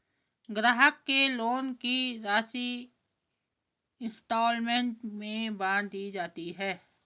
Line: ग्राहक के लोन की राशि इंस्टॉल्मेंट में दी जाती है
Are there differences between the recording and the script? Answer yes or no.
yes